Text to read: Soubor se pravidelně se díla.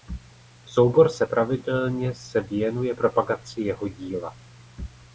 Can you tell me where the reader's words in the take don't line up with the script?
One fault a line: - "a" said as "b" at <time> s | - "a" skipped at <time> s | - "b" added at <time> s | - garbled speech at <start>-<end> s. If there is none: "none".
- "věnuje propagaci jeho" added at 2.4 s